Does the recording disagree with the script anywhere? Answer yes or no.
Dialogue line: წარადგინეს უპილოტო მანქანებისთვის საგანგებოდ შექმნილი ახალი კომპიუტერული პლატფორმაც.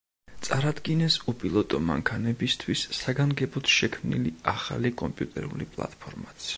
no